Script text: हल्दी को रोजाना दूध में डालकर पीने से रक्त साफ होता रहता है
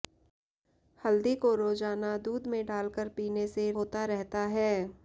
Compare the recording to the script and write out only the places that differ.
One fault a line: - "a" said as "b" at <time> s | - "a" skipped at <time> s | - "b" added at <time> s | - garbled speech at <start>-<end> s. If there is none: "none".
- "रक्त साफ" skipped at 3.7 s